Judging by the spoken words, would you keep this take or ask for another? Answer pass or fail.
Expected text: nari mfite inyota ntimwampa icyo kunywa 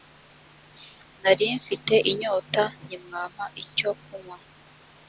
pass